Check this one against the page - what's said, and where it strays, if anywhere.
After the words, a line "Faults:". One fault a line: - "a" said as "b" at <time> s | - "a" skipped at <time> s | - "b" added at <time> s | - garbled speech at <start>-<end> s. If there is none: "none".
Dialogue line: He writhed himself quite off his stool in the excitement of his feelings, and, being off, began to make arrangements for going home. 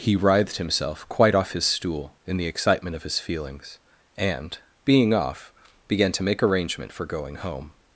He writhed himself quite off his stool in the excitement of his feelings, and, being off, began to make arrangement for going home.
Faults:
- "arrangements" said as "arrangement" at 6.4 s